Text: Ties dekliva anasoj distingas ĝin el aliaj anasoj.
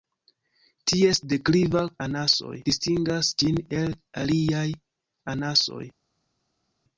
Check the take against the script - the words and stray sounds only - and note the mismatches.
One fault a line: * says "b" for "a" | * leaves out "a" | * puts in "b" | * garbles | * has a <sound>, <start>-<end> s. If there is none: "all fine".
all fine